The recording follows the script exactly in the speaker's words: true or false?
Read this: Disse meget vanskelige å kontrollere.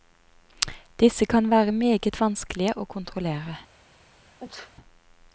false